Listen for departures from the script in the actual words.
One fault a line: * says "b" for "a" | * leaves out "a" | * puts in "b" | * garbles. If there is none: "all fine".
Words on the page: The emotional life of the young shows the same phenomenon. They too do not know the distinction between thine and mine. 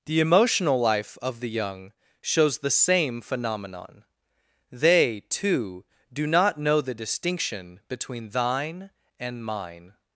all fine